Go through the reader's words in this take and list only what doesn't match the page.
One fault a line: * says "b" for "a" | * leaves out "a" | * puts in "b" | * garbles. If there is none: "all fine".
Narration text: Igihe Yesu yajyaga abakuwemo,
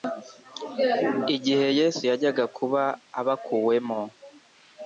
* puts in "kuba"